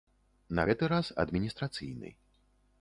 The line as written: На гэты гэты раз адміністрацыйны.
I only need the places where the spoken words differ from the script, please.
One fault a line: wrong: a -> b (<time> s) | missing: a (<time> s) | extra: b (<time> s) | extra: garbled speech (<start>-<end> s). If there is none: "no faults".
missing: гэты (0.9 s)